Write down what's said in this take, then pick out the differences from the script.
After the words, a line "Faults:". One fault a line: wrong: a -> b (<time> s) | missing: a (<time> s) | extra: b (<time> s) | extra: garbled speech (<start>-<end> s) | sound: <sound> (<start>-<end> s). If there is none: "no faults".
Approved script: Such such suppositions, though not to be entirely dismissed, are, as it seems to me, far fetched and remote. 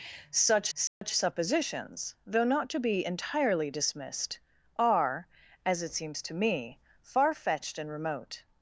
Such such suppositions, though not to be entirely dismissed, are, as it seems to me, far fetched and remote.
Faults:
sound: dropout (0.9-1.0 s)